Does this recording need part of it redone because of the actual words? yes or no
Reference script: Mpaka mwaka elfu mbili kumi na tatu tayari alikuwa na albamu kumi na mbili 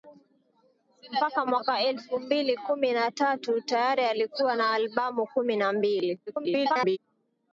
yes